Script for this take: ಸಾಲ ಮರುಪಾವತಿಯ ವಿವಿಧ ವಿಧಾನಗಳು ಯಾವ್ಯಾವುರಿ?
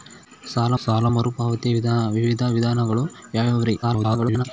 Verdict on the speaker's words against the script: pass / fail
fail